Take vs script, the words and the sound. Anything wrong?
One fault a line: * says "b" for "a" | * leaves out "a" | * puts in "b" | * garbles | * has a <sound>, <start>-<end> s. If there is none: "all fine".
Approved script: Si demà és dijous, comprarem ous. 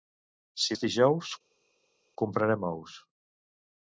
* leaves out "demà"